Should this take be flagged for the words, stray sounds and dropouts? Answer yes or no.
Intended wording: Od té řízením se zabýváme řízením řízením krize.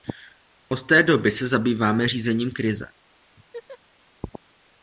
yes